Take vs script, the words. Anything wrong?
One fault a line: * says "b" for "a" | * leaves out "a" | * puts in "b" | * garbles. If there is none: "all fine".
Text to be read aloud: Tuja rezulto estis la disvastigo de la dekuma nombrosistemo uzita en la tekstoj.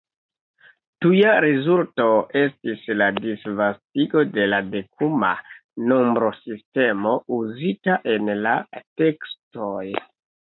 all fine